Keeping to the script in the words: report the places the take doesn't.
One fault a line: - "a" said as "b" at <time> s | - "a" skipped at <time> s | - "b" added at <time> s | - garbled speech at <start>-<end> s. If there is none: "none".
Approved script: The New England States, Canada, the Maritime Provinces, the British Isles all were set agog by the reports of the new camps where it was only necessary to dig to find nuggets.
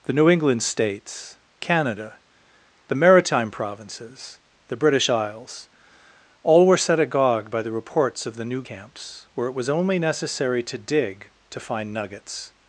none